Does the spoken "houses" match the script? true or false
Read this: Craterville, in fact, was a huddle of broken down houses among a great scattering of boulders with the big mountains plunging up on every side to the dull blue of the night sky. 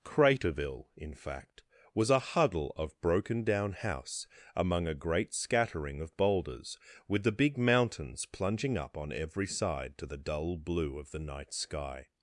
false